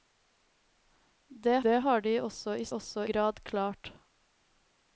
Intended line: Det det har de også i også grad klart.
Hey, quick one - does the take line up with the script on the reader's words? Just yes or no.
yes